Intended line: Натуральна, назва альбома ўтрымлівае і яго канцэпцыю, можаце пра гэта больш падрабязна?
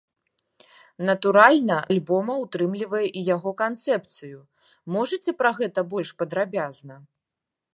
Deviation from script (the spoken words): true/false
true